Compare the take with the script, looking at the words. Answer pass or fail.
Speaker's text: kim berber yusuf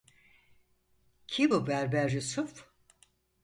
fail